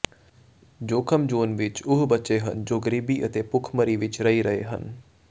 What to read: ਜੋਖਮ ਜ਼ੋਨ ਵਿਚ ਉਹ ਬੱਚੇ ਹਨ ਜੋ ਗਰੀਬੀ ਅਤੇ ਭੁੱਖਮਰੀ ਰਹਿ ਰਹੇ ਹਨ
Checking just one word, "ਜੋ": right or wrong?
right